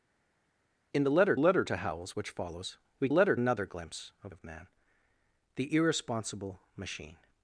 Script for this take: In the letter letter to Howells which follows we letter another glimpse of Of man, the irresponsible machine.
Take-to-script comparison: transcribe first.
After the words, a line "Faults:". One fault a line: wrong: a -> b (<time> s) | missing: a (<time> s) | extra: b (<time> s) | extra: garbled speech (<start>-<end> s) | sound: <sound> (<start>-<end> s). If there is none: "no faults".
In the letter letter to Howells which follows we letter another glimpse of Of man, the irresponsible machine.
Faults:
no faults